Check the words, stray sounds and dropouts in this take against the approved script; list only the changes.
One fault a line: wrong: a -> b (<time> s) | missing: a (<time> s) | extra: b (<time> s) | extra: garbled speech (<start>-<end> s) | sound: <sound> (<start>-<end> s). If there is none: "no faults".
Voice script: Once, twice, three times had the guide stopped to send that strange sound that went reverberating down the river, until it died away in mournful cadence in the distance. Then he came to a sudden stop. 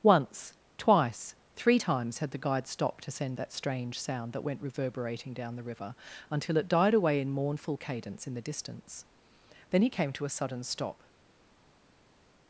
no faults